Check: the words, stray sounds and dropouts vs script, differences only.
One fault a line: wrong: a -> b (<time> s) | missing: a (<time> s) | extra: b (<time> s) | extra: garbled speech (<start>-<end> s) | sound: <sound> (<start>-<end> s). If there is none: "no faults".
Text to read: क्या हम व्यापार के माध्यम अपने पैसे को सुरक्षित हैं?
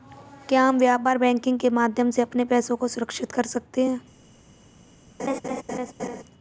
extra: बैंकिंग (1.2 s)
extra: से (2.1 s)
extra: कर सकते (3.3 s)
sound: laugh (5.2-6.2 s)